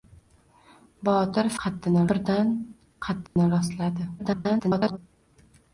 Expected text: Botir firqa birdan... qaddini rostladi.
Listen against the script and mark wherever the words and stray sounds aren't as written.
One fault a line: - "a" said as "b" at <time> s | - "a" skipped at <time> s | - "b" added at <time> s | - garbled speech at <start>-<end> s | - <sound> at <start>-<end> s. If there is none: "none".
- "firqa" said as "qaddini" at 1.6 s
- dropout at 3.3-3.4 s
- garbled speech at 4.2-5.0 s